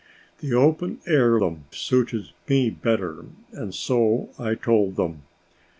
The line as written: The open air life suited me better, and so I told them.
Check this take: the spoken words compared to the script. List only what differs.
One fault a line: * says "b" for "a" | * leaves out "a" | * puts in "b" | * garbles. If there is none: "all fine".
* says "them" for "life"